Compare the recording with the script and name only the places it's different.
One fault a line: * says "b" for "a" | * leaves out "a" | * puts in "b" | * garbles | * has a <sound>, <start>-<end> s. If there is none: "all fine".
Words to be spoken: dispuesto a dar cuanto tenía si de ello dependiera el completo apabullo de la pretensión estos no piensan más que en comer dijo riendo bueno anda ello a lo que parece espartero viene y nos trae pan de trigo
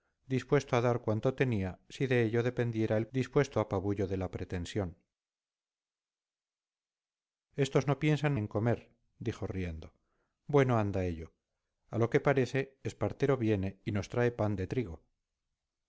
* says "dispuesto" for "completo"
* leaves out "más que"